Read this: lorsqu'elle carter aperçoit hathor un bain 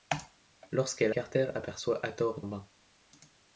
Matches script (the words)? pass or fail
pass